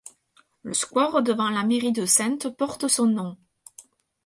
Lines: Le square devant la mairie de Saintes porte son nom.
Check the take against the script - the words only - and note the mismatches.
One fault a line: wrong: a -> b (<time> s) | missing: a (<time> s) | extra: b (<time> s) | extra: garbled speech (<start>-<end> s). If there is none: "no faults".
no faults